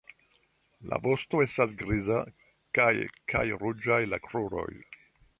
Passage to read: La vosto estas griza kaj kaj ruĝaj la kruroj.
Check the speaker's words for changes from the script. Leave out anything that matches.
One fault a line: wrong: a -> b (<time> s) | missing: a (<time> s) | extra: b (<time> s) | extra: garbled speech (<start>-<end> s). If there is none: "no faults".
no faults